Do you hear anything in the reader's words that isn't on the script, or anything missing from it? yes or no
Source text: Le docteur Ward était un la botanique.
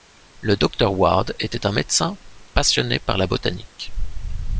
yes